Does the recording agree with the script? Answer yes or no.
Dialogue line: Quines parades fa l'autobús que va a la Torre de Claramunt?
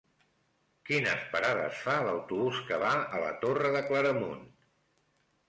yes